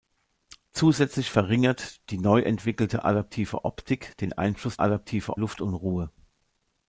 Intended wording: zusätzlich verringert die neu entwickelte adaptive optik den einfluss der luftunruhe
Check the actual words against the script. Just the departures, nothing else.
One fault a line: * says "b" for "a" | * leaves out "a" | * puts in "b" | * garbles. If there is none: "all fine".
* says "adaptive" for "der"